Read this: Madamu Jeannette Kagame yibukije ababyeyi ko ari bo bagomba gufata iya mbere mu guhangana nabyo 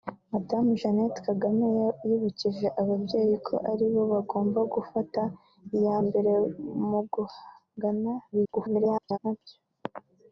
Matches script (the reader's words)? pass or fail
fail